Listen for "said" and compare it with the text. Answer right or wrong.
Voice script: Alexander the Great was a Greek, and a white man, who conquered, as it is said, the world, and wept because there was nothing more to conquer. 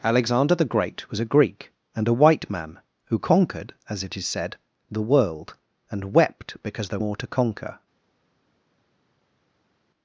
right